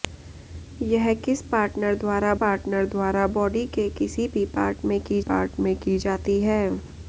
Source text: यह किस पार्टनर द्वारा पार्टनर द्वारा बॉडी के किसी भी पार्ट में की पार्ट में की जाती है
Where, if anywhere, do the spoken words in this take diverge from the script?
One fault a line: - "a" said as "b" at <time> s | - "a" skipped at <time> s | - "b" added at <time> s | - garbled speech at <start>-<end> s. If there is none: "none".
none